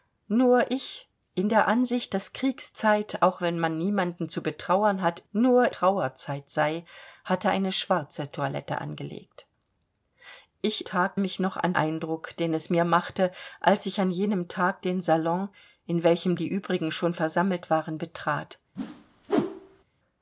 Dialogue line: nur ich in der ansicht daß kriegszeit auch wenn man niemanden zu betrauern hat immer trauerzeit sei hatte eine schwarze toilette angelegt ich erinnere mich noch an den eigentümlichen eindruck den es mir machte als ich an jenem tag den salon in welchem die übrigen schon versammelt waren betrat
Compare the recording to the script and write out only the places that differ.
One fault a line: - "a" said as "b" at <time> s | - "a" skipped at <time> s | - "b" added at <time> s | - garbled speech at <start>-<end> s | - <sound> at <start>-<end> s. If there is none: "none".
- "immer" said as "nur" at 5.3 s
- "erinnere" said as "tag" at 10.8 s
- "den eigentümlichen" skipped at 11.7 s
- whoosh at 18.8-19.8 s